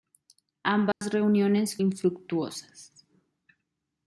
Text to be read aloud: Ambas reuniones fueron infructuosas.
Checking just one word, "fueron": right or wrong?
wrong